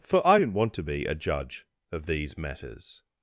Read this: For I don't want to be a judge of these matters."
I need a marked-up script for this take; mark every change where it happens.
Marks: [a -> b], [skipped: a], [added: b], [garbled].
For I [don't -> didn't] want to be a judge of these matters."